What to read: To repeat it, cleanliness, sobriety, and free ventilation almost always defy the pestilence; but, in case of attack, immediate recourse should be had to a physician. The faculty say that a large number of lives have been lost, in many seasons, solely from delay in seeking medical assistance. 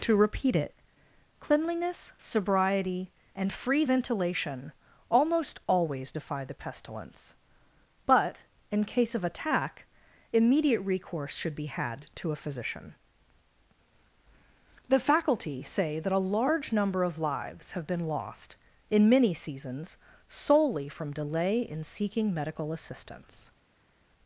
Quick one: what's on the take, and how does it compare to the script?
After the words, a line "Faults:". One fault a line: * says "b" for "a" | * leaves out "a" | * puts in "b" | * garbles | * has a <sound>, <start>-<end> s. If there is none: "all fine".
To repeat it, cleanliness, sobriety, and free ventilation almost always defy the pestilence; but, in case of attack, immediate recourse should be had to a physician. The faculty say that a large number of lives have been lost, in many seasons, solely from delay in seeking medical assistance.
Faults:
all fine